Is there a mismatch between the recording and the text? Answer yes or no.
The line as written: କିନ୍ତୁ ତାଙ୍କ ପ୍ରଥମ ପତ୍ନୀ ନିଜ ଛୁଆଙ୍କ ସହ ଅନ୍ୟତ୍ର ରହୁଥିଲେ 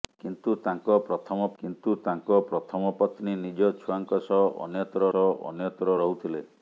yes